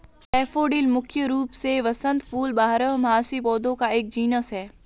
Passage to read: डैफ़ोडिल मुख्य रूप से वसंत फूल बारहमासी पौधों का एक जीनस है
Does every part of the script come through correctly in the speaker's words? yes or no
yes